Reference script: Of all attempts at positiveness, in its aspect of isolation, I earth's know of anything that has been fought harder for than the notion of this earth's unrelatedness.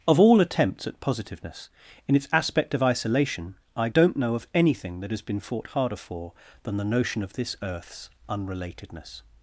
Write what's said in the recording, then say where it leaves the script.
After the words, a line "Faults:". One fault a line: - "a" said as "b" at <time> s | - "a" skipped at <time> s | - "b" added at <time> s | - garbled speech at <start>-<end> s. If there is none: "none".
Of all attempts at positiveness, in its aspect of isolation, I don't know of anything that has been fought harder for than the notion of this earth's unrelatedness.
Faults:
- "earth's" said as "don't" at 3.9 s